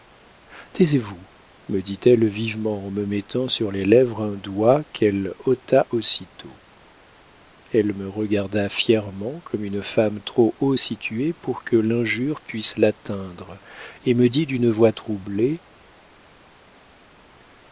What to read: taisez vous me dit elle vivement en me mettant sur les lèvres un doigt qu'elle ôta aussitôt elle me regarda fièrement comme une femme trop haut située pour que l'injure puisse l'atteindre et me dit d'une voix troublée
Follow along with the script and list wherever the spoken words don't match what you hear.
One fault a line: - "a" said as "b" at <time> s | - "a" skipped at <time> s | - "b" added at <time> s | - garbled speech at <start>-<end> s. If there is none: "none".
none